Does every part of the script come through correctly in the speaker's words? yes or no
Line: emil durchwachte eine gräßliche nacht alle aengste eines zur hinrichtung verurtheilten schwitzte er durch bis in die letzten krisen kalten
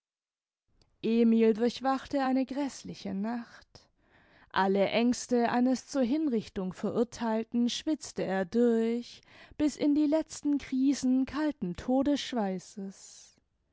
yes